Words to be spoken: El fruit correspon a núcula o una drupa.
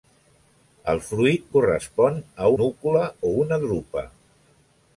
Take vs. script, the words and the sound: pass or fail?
pass